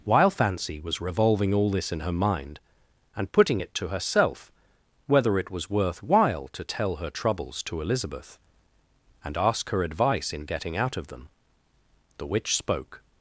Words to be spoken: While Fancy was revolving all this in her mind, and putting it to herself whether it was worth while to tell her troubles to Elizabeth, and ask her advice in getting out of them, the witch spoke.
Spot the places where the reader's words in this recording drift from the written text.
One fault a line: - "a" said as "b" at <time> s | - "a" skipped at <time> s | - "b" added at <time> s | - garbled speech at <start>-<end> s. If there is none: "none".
none